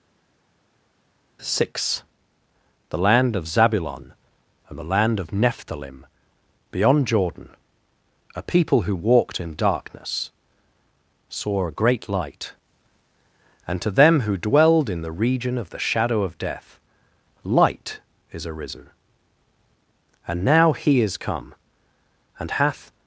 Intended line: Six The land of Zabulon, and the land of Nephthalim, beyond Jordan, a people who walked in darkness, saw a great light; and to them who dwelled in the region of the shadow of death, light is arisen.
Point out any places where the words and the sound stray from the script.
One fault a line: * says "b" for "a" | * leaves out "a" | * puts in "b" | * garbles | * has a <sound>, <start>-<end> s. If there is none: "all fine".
* puts in "And now he is come and hath"